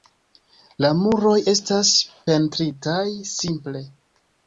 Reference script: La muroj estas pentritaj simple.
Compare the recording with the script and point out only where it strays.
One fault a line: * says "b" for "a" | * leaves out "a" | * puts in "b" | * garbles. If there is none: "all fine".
all fine